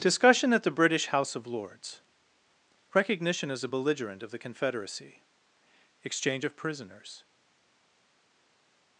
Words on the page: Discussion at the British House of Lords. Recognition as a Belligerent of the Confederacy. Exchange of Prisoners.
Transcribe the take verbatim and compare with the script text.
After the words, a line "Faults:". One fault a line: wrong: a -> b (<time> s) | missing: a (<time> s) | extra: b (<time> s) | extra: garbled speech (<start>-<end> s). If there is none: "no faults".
Discussion at the British House of Lords. Recognition as a Belligerent of the Confederacy. Exchange of Prisoners.
Faults:
no faults